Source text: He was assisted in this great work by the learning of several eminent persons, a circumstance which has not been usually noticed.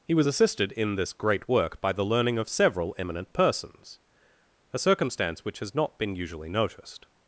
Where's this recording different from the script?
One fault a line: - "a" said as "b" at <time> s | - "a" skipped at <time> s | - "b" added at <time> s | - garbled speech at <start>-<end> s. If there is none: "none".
none